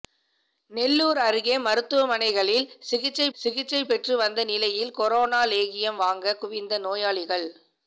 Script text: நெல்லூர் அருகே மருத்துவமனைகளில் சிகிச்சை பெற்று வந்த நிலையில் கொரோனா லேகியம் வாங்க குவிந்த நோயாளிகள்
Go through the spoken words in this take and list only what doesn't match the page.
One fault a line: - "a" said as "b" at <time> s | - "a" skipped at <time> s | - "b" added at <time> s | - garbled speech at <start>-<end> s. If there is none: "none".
- "சிகிச்சை" added at 3.3 s